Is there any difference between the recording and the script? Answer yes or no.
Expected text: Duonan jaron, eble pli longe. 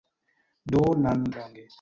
yes